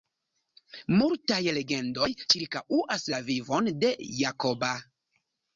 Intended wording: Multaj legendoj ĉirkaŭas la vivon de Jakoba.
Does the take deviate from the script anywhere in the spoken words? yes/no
no